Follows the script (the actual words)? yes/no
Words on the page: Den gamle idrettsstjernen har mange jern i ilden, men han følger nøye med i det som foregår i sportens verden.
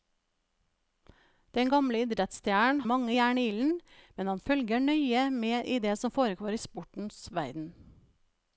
no